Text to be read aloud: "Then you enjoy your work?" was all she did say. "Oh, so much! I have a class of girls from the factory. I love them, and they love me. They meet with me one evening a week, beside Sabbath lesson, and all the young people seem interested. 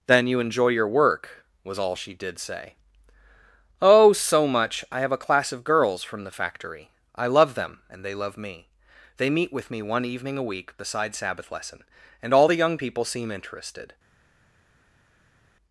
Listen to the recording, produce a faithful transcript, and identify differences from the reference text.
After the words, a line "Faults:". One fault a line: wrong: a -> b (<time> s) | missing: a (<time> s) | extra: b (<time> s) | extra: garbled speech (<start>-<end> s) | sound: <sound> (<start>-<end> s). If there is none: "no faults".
"Then you enjoy your work?" was all she did say. "Oh, so much! I have a class of girls from the factory. I love them, and they love me. They meet with me one evening a week, beside Sabbath lesson, and all the young people seem interested.
Faults:
no faults